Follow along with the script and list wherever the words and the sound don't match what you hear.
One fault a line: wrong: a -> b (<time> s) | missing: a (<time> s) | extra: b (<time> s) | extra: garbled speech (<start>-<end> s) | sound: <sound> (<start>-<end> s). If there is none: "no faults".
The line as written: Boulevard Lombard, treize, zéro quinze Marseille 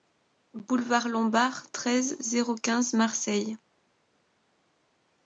no faults